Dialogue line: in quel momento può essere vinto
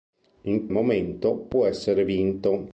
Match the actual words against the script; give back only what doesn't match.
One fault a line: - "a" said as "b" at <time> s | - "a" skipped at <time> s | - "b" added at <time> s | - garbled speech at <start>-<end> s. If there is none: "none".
- "quel" skipped at 0.7 s